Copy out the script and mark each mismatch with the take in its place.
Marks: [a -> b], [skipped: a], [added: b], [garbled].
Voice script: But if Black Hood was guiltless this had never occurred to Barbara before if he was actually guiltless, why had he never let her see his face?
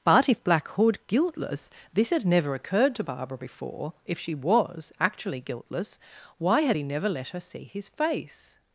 But if Black Hood [skipped: was] guiltless this had never occurred to Barbara before if [he -> she] was actually guiltless, why had he never let her see his face?